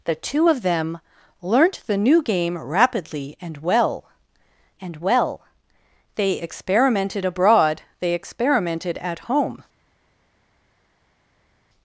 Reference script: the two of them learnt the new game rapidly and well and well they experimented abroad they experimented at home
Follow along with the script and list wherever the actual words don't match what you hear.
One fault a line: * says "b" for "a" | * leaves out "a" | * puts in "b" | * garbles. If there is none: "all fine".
all fine